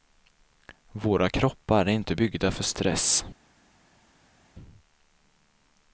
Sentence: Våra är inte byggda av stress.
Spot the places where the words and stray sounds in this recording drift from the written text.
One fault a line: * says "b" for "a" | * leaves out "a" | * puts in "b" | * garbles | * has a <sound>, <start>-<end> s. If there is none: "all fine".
* puts in "kroppar"
* says "för" for "av"